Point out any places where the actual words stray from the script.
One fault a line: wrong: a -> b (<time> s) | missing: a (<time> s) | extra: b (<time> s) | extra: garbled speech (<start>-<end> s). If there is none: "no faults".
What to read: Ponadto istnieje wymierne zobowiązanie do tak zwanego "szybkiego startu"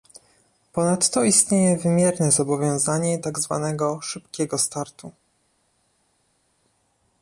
missing: do (3.2 s)